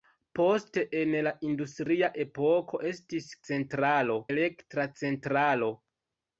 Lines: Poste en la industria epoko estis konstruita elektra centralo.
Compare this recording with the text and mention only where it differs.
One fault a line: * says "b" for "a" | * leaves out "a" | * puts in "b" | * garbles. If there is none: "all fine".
* says "centralo" for "konstruita"